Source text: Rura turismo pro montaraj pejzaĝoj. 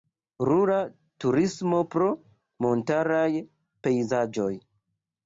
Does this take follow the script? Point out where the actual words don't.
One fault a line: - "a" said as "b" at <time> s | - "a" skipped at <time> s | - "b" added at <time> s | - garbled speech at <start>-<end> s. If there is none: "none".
none